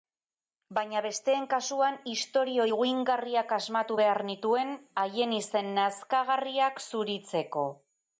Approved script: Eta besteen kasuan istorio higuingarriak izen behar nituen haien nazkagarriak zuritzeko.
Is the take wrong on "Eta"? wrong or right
wrong